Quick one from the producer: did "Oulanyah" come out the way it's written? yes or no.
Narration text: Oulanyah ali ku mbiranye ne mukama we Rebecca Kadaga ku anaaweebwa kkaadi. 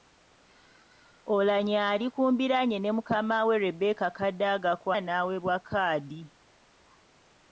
yes